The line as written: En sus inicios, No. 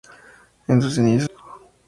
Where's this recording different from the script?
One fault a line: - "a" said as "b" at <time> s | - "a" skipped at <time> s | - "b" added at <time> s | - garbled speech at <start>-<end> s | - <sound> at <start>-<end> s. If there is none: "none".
none